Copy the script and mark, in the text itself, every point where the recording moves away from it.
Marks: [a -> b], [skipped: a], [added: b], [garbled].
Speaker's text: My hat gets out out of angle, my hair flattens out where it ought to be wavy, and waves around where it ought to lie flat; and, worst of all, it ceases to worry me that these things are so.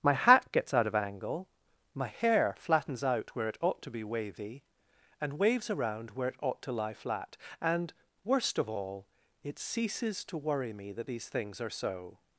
My hat gets out [skipped: out] of angle, my hair flattens out where it ought to be wavy, and waves around where it ought to lie flat; and, worst of all, it ceases to worry me that these things are so.